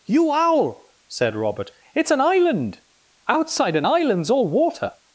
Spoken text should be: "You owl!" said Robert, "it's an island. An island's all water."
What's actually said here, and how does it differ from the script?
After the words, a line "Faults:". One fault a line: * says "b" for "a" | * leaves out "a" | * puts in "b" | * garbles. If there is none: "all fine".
"You owl!" said Robert, "it's an island. Outside an island's all water."
Faults:
* puts in "Outside"